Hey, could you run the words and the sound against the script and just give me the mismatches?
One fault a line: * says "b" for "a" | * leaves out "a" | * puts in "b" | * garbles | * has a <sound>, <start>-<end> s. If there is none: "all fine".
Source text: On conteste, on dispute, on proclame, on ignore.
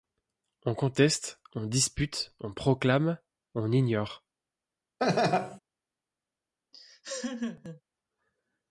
* has a laugh, 5.0-5.6 s
* has a laugh, 6.7-7.8 s